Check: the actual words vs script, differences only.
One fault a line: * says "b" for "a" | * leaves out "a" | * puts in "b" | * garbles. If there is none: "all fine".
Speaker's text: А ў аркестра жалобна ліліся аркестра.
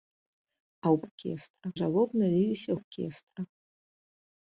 all fine